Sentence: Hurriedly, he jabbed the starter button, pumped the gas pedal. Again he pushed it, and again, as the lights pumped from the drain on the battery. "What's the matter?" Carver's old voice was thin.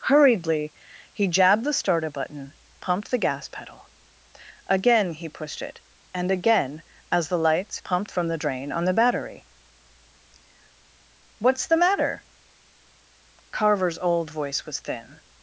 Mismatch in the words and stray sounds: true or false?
false